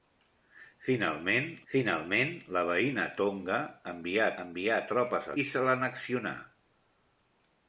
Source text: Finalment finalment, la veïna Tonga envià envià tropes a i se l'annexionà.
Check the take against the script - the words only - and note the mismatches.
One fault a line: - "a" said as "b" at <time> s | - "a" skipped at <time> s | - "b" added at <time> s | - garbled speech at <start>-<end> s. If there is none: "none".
none